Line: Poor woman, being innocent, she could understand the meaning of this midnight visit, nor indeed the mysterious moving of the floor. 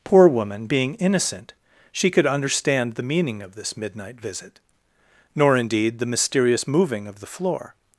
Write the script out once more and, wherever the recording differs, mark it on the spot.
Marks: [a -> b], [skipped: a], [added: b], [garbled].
Poor woman, being innocent, she could understand the meaning of this midnight visit, nor indeed the mysterious moving of the floor.